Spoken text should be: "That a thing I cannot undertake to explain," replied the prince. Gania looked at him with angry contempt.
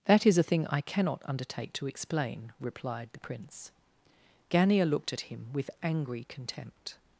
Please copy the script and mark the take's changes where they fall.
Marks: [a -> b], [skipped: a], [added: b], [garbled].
"That [added: is] a thing I cannot undertake to explain," replied the prince. Gania looked at him with angry contempt.